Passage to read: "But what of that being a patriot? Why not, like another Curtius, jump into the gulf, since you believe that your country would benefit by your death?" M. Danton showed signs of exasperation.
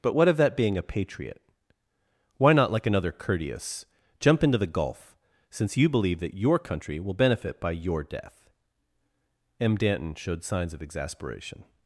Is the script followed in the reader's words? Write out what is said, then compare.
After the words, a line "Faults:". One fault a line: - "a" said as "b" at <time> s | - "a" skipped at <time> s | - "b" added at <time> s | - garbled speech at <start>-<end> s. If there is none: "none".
"But what of that being a patriot? Why not, like another Curtius, jump into the gulf, since you believe that your country will benefit by your death?" M. Danton showed signs of exasperation.
Faults:
- "would" said as "will" at 7.0 s